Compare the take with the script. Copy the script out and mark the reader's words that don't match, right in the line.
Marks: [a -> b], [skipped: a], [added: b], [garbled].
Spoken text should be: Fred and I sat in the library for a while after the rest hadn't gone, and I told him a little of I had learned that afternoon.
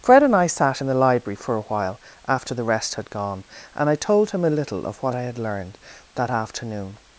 Fred and I sat in the library for a while after the rest [hadn't -> had] gone, and I told him a little of [added: what] I had learned that afternoon.